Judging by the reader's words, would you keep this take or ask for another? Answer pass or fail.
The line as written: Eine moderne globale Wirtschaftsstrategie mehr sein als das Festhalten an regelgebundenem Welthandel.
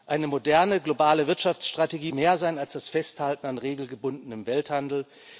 pass